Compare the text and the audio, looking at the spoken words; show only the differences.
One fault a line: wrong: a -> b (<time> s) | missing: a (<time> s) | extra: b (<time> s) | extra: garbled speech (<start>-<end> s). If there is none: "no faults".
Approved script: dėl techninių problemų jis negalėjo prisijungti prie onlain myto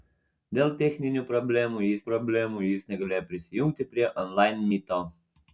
extra: problemų jis (2.1 s)